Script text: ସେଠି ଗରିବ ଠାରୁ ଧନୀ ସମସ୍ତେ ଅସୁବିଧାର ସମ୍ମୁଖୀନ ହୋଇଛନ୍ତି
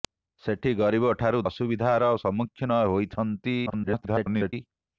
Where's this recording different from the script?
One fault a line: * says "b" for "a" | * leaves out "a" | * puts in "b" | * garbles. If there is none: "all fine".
* leaves out "ଧନୀ ସମସ୍ତେ"
* garbles